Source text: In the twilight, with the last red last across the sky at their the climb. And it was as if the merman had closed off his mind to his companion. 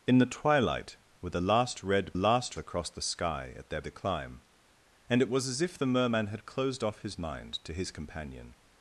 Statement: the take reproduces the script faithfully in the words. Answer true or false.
true